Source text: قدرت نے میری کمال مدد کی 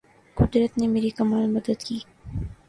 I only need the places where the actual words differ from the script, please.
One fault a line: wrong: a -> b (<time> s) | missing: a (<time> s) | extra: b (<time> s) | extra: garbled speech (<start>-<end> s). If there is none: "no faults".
no faults